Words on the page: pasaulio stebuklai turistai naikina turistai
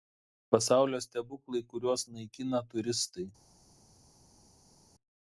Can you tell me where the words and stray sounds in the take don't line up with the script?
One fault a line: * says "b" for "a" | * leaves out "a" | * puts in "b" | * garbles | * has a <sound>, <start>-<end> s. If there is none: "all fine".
* says "kuriuos" for "turistai"